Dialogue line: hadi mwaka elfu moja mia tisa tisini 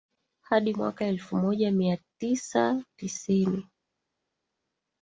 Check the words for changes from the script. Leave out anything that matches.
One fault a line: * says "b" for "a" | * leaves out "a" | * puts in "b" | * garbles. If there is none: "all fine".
all fine